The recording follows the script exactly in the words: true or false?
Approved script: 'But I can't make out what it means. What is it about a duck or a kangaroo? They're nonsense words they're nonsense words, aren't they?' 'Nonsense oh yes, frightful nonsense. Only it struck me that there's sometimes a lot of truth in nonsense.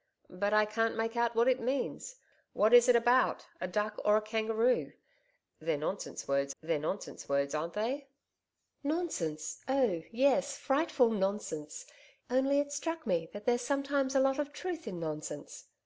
true